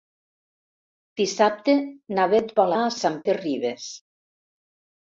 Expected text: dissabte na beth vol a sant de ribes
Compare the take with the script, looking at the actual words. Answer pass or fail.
pass